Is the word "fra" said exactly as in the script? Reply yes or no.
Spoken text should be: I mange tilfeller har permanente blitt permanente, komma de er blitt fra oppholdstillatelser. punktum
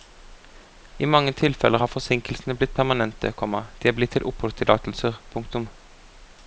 no